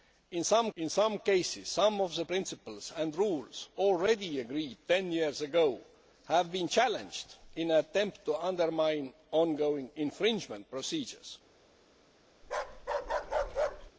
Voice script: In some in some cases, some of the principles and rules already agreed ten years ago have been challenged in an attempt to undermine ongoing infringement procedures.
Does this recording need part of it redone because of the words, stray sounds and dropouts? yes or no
yes